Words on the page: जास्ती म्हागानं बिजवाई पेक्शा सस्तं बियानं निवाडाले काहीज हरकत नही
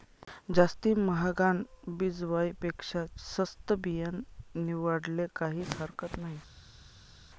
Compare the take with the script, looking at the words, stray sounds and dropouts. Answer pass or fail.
pass